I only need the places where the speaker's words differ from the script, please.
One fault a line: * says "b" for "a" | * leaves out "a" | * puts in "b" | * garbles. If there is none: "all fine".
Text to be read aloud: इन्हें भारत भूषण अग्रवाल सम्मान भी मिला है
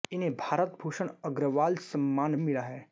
* leaves out "भी"